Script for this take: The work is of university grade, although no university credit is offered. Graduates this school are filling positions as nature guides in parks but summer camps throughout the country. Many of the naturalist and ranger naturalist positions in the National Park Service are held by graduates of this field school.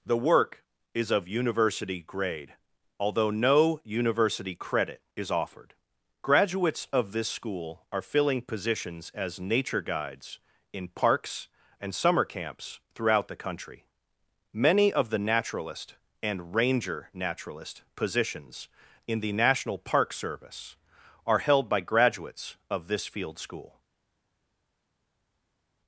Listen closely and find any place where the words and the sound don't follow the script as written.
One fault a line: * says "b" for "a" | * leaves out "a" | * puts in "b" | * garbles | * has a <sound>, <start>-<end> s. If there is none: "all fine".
* puts in "of"
* says "and" for "but"